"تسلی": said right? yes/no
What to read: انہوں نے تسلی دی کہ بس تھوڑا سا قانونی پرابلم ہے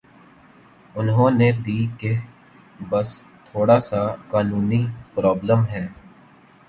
no